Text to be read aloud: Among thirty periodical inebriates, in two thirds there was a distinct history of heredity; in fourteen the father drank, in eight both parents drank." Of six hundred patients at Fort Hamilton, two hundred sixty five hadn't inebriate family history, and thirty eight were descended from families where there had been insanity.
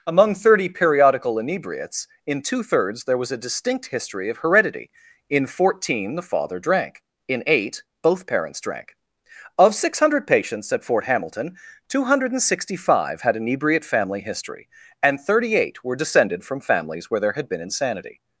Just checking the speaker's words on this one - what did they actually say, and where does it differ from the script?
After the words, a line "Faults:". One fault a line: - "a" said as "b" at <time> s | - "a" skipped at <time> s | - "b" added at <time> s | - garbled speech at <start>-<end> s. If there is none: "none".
Among thirty periodical inebriates, in two thirds there was a distinct history of heredity; in fourteen the father drank, in eight both parents drank." Of six hundred patients at Fort Hamilton, two hundred sixty five had inebriate family history, and thirty eight were descended from families where there had been insanity.
Faults:
- "hadn't" said as "had" at 13.2 s